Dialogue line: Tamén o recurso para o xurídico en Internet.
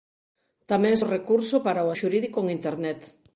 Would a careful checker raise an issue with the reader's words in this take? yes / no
no